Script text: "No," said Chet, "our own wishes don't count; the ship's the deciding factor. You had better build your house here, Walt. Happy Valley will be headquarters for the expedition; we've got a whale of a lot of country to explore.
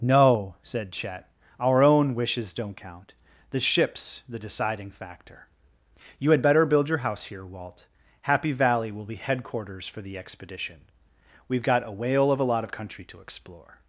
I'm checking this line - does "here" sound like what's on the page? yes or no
yes